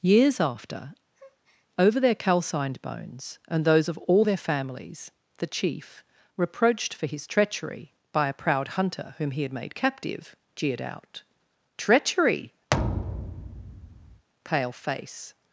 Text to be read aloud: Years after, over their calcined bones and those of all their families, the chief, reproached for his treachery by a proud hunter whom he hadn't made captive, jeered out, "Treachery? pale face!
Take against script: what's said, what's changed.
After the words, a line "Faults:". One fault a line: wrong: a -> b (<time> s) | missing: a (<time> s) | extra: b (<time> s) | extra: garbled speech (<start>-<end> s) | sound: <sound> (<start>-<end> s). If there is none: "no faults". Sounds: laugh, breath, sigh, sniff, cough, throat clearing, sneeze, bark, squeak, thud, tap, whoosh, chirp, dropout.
Years after, over their calcined bones and those of all their families, the chief, reproached for his treachery by a proud hunter whom he had made captive, jeered out, "Treachery? pale face!
Faults:
sound: breath (1.1-1.7 s)
wrong: hadn't -> had (9.4 s)
sound: thud (12.7-14.3 s)